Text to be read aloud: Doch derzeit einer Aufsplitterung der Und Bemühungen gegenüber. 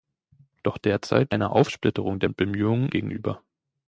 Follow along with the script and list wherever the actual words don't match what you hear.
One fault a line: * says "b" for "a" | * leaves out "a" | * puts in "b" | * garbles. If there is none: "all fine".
all fine